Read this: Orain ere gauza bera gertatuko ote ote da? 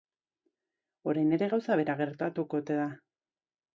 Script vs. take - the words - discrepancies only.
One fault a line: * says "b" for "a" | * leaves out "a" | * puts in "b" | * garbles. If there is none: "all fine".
* leaves out "ote"